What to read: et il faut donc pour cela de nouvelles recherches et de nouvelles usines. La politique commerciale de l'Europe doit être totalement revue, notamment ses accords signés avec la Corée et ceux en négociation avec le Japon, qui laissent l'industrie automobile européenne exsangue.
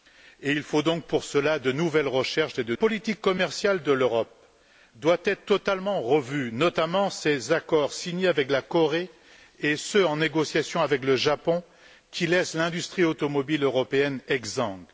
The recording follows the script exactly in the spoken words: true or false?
false